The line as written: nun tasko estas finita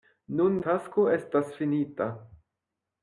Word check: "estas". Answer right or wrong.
right